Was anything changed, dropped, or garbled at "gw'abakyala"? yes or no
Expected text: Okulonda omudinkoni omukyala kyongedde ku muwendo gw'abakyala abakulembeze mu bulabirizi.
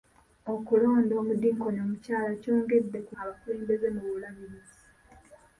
yes